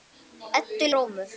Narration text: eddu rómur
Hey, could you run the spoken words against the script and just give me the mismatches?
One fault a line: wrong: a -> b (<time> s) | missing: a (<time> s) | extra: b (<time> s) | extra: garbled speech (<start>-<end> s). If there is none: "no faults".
no faults